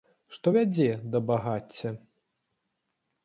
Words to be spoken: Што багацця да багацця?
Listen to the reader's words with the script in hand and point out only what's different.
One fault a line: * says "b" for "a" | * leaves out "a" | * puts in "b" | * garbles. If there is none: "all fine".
* says "вядзе" for "багацця"